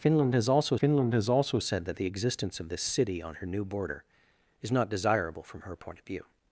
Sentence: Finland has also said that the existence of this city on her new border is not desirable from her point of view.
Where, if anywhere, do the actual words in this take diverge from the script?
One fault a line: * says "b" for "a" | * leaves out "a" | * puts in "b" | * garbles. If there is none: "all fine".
* puts in "finland has also"